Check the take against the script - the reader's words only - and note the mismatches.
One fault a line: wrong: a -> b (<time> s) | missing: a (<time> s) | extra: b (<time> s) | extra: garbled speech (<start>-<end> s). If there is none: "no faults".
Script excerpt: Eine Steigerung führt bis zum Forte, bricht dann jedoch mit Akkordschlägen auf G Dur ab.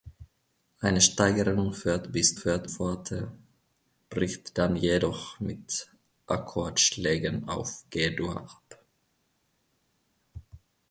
wrong: zum -> führt (2.4 s)